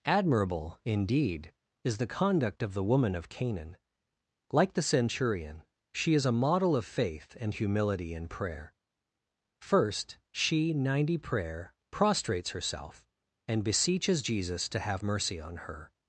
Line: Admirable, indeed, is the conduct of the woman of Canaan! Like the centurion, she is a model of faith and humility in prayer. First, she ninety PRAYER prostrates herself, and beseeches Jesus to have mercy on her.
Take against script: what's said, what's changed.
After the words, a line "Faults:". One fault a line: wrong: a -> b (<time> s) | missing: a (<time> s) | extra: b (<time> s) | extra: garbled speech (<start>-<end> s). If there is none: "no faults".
Admirable, indeed, is the conduct of the woman of Canaan! Like the centurion, she is a model of faith and humility in prayer. First, she ninety PRAYER prostrates herself, and beseeches Jesus to have mercy on her.
Faults:
no faults